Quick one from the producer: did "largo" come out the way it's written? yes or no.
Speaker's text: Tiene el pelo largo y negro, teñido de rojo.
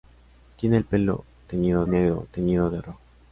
no